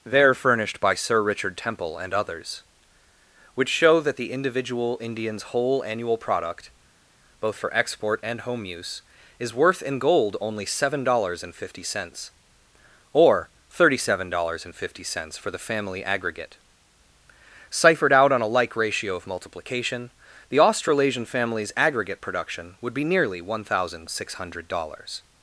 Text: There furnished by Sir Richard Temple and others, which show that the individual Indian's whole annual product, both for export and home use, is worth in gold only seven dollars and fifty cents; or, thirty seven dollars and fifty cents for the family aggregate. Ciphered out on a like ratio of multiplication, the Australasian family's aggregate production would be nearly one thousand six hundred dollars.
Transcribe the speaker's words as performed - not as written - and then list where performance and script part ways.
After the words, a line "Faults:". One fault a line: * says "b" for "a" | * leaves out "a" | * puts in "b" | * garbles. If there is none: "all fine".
There furnished by Sir Richard Temple and others, which show that the individual Indian's whole annual product, both for export and home use, is worth in gold only seven dollars and fifty cents; or, thirty seven dollars and fifty cents for the family aggregate. Ciphered out on a like ratio of multiplication, the Australasian family's aggregate production would be nearly one thousand six hundred dollars.
Faults:
all fine